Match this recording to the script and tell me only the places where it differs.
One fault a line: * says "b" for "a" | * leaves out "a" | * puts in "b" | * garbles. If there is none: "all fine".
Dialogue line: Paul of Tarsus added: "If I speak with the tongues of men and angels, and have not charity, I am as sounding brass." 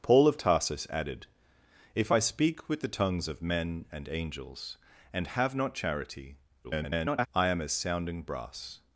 * garbles